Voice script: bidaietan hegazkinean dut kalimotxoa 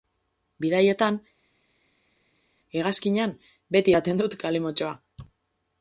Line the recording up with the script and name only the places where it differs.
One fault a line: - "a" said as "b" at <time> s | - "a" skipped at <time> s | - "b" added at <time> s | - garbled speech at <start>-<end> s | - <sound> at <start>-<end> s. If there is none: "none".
- "beti edaten" added at 3.8 s